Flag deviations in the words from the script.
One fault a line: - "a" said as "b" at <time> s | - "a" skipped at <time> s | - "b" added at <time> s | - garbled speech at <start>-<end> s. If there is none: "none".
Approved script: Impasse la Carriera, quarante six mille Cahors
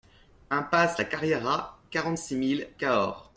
none